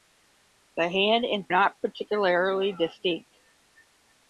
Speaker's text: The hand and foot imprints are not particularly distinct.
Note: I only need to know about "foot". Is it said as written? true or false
false